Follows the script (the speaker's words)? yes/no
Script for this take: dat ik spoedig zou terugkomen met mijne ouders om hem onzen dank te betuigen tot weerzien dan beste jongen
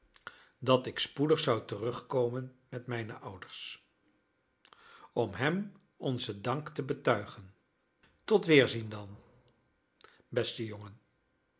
yes